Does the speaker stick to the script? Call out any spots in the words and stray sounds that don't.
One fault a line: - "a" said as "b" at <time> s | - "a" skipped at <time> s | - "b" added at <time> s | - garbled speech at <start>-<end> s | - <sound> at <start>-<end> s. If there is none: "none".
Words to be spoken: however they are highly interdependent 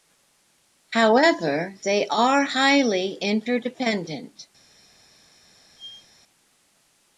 - squeak at 5.8-6.1 s